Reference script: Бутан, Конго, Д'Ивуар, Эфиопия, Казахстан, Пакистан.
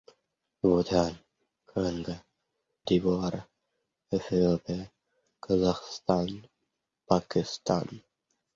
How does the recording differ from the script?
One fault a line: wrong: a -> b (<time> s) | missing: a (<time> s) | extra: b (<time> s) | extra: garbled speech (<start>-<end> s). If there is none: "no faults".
no faults